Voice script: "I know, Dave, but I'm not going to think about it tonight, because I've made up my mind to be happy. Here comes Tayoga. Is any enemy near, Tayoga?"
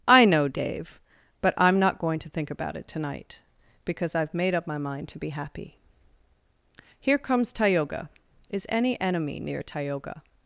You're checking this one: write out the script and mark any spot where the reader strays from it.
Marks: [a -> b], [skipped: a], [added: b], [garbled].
"I know, Dave, but I'm not going to think about it tonight, because I've made up my mind to be happy. Here comes Tayoga. Is any enemy near, Tayoga?"